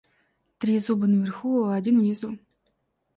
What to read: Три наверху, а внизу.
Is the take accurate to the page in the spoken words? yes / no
no